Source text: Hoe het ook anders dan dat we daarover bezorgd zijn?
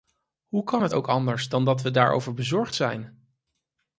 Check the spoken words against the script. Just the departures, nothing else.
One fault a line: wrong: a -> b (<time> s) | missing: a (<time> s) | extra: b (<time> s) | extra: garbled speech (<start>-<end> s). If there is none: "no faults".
extra: kan (0.6 s)